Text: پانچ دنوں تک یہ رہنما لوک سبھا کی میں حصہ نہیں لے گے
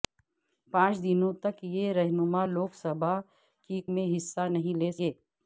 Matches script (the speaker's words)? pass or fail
pass